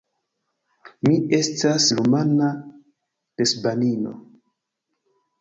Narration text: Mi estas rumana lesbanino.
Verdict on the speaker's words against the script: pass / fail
pass